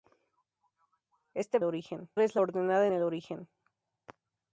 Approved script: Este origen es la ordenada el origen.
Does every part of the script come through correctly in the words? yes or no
yes